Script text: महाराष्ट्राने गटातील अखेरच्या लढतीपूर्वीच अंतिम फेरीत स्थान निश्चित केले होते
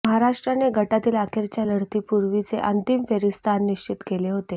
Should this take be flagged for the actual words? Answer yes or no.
no